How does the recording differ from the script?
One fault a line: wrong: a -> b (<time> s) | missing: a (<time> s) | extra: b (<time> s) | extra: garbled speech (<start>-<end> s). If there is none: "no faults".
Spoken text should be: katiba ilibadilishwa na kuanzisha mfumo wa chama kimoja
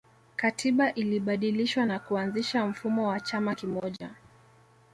no faults